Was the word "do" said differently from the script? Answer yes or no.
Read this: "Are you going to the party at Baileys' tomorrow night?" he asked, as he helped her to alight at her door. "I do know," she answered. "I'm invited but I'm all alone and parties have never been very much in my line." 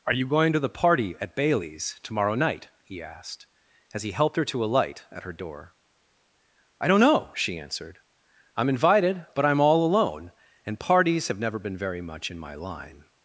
yes